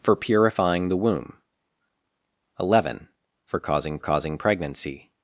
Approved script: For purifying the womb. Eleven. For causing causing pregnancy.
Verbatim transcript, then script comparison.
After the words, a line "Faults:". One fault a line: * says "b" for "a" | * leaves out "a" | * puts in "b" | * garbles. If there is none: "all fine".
For purifying the womb. Eleven. For causing causing pregnancy.
Faults:
all fine